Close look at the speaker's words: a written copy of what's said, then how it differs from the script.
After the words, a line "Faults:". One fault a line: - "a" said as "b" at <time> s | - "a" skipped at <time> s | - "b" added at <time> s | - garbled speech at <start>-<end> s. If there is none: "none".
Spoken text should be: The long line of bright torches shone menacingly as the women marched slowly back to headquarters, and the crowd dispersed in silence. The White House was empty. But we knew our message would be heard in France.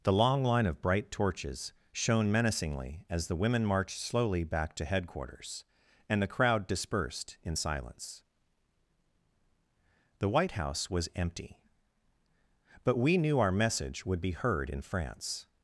The long line of bright torches shone menacingly as the women marched slowly back to headquarters, and the crowd dispersed in silence. The White House was empty. But we knew our message would be heard in France.
Faults:
none